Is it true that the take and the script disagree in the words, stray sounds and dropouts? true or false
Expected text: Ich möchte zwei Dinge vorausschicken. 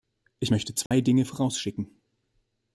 true